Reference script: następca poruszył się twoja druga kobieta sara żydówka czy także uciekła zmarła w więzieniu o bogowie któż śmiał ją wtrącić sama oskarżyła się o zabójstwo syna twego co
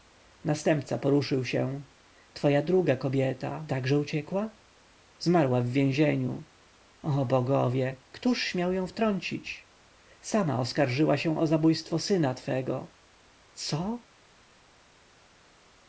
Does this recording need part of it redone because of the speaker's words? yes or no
yes